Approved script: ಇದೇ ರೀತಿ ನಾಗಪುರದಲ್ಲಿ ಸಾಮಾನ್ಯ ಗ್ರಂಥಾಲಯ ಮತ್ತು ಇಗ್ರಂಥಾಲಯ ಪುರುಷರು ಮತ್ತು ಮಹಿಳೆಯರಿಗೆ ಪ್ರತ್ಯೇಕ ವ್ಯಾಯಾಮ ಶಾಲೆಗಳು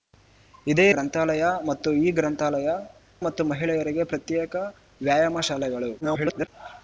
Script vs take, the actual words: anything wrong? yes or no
yes